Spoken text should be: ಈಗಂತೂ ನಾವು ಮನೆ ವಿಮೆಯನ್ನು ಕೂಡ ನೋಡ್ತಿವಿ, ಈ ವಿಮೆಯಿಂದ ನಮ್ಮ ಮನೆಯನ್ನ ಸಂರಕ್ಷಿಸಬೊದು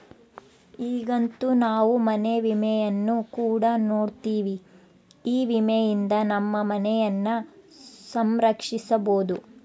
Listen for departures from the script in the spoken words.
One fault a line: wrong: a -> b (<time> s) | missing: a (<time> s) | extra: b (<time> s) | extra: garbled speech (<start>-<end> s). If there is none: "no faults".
no faults